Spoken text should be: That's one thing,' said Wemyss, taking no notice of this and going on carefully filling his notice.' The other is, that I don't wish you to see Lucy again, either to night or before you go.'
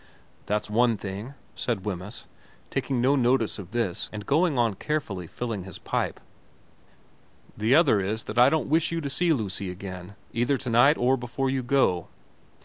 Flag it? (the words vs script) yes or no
yes